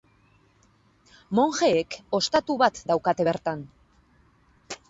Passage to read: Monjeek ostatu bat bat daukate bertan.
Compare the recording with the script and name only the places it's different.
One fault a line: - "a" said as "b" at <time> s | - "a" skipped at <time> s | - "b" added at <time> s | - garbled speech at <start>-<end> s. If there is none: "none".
- "bat" skipped at 2.8 s